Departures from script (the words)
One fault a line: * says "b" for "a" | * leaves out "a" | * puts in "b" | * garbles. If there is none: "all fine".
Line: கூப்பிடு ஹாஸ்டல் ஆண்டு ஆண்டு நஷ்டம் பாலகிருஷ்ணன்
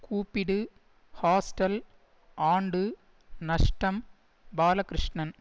* leaves out "ஆண்டு"